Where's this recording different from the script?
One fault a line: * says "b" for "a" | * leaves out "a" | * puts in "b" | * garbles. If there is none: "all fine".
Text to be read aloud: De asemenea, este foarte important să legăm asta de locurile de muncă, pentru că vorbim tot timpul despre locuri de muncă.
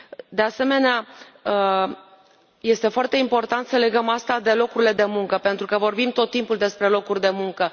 all fine